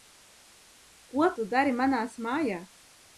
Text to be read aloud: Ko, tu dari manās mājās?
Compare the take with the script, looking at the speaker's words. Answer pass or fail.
pass